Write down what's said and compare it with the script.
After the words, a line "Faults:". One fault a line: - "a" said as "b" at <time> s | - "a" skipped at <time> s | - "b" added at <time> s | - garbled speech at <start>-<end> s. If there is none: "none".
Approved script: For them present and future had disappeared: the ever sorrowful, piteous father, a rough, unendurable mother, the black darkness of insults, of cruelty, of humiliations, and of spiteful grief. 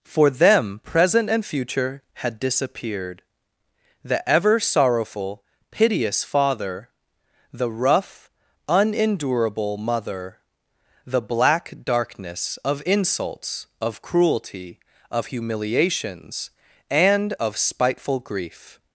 For them present and future had disappeared: the ever sorrowful, piteous father, the rough, unendurable mother, the black darkness of insults, of cruelty, of humiliations, and of spiteful grief.
Faults:
- "a" said as "the" at 7.5 s